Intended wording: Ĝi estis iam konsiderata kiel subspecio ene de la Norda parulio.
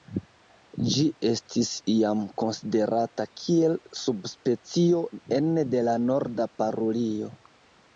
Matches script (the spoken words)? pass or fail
pass